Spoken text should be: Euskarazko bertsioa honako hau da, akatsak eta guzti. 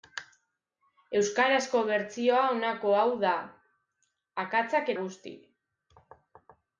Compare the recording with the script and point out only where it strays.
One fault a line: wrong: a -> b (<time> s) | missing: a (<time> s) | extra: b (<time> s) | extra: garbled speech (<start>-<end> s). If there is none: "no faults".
missing: eta (4.9 s)